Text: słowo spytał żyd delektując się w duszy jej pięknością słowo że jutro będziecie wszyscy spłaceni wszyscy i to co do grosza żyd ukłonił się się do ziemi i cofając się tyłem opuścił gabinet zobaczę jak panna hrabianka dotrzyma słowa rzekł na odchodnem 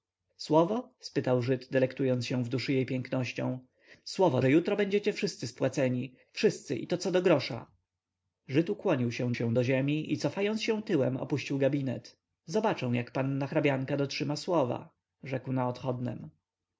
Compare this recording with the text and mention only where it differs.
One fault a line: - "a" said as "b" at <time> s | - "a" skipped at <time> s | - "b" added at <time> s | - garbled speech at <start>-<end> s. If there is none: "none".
none